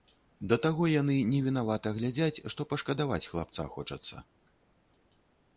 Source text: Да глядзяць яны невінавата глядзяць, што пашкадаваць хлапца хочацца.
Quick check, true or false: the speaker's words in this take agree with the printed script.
false